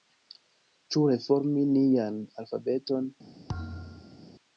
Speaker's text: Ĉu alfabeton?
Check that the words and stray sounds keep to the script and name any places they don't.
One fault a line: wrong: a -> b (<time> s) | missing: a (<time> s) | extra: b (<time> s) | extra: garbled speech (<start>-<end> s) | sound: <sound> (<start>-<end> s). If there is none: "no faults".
extra: reformi nian (1.1 s)
sound: thud (3.5-4.3 s)